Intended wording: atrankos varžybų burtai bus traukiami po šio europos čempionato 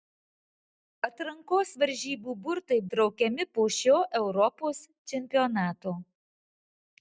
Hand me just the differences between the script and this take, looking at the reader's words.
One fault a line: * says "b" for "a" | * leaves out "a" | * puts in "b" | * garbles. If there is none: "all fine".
* leaves out "bus"